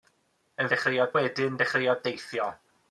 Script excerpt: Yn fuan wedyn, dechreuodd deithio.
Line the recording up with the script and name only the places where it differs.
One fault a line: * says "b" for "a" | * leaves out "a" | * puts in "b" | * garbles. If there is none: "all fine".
* says "dechreuodd" for "fuan"